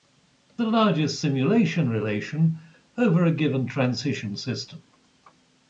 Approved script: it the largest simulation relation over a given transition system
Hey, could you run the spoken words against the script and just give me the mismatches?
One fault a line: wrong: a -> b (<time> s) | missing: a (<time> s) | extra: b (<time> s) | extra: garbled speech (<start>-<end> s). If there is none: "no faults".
no faults